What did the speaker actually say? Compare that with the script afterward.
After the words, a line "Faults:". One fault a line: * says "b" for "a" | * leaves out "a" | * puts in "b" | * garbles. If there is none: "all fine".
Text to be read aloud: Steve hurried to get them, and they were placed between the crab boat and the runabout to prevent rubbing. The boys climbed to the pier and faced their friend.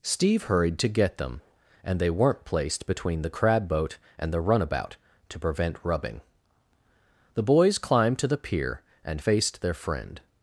Steve hurried to get them, and they weren't placed between the crab boat and the runabout to prevent rubbing. The boys climbed to the pier and faced their friend.
Faults:
* says "weren't" for "were"